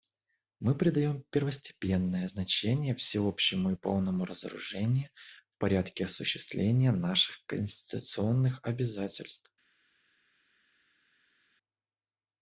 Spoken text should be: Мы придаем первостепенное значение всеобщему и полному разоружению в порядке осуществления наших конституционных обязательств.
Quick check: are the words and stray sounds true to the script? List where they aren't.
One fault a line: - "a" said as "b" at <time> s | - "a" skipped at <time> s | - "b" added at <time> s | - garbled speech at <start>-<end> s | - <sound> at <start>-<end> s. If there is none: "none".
none